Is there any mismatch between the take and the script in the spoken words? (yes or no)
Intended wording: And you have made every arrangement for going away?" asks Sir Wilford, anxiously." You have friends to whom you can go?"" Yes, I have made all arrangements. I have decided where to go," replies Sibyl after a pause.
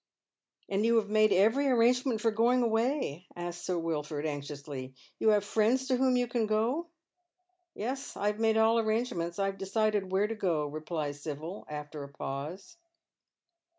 no